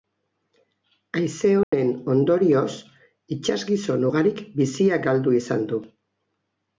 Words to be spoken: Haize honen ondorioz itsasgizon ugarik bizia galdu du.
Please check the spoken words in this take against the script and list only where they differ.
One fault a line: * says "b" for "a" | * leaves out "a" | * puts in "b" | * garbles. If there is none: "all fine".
* puts in "izan"